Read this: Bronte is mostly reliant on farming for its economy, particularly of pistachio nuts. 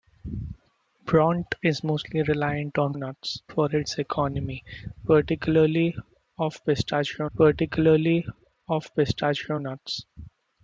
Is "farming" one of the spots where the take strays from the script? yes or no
yes